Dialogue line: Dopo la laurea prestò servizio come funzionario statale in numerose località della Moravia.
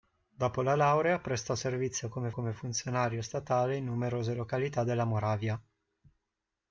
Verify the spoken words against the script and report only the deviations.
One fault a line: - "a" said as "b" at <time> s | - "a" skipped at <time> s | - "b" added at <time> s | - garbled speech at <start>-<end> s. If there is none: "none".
- "come" added at 2.3 s